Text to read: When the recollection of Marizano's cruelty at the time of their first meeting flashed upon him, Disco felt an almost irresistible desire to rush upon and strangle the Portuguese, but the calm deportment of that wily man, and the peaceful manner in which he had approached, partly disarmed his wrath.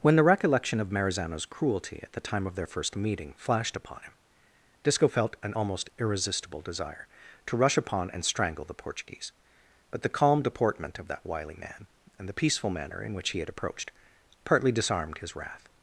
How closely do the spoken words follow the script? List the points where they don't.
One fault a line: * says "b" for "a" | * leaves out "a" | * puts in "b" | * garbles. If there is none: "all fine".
all fine